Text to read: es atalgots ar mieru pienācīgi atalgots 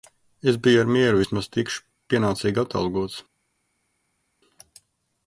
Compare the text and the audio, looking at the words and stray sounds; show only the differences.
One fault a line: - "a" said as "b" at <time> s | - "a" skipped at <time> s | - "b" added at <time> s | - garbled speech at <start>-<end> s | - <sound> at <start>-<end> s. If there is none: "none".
- "atalgots" said as "biju" at 0.7 s
- "vismaz tikšu" added at 1.2 s